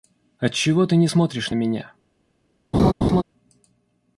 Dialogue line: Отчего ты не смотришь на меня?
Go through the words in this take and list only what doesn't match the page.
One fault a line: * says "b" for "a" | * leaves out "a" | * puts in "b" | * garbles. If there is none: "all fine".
all fine